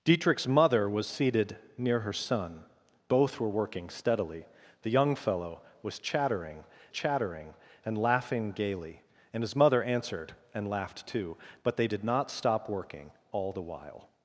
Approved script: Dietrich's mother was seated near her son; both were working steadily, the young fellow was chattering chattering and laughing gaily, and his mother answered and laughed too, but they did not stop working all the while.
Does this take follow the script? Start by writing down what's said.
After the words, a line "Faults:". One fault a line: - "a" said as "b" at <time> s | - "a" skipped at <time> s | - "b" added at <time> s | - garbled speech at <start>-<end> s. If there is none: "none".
Dietrich's mother was seated near her son; both were working steadily, the young fellow was chattering chattering and laughing gaily, and his mother answered and laughed too, but they did not stop working all the while.
Faults:
none